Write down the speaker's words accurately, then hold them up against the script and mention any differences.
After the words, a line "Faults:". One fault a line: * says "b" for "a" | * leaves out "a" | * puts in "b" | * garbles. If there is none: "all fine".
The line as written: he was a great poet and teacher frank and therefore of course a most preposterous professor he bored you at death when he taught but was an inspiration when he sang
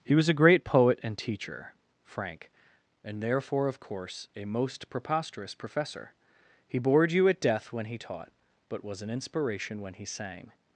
he was a great poet and teacher frank and therefore of course a most preposterous professor he bored you at death when he taught but was an inspiration when he sang
Faults:
all fine